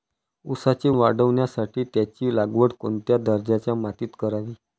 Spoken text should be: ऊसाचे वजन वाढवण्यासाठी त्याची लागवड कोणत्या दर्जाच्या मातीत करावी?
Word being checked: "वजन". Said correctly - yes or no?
no